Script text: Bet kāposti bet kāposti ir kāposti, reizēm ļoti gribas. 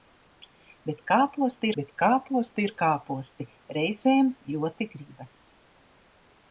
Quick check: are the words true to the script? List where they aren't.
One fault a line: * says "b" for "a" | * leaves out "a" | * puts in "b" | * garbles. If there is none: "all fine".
all fine